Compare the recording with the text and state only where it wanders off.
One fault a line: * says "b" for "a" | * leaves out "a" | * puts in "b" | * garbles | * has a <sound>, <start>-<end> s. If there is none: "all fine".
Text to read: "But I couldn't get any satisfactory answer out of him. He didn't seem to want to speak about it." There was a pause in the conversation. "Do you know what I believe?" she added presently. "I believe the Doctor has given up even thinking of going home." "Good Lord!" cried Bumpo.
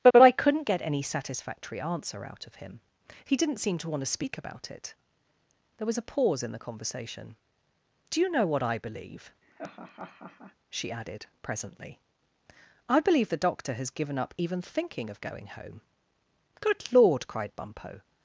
* puts in "but"
* has a laugh, 9.4-10.6 s